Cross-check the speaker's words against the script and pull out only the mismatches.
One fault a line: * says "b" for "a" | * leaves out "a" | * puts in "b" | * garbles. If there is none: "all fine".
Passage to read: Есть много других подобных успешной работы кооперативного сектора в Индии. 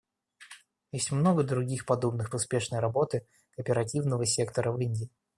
all fine